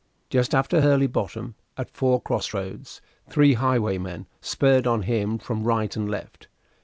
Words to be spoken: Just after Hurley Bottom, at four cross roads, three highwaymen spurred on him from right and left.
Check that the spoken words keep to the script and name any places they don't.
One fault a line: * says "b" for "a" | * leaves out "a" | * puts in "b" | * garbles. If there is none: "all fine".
all fine